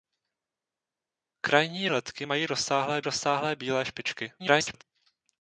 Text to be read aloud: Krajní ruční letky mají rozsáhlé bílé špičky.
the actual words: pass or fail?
fail